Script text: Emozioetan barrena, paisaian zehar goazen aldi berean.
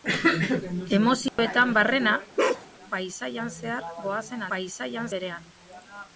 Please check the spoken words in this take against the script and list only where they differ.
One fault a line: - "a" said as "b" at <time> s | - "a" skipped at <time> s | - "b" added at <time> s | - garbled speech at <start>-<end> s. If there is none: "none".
- "aldi" said as "paisaian" at 4.5 s